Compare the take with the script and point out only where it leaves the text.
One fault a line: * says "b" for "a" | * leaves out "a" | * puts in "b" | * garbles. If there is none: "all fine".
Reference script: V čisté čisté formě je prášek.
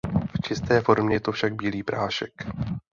* leaves out "čisté"
* puts in "to však bílý"